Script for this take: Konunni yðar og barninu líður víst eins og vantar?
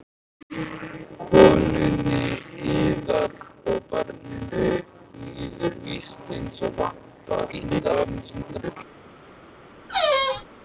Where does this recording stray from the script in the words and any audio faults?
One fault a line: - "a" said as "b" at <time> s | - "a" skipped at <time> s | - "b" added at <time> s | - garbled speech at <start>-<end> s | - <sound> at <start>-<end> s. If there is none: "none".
- garbled speech at 7.5-8.8 s
- squeak at 9.9-10.5 s